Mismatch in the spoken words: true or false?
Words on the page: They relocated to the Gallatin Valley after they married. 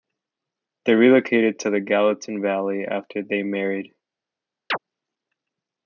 false